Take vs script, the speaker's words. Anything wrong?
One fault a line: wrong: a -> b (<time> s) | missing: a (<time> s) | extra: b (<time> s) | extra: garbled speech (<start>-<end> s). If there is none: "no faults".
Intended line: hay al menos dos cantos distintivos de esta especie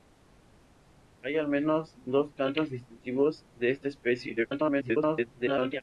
extra: garbled speech (4.4-5.8 s)